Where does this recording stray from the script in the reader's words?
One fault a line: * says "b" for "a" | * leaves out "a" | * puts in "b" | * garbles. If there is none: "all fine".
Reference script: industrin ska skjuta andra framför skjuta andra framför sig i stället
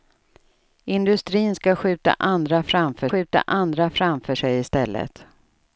all fine